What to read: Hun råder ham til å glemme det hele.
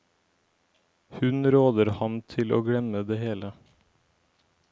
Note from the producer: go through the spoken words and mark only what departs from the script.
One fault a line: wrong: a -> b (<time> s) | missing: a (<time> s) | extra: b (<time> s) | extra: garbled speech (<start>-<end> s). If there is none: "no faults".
no faults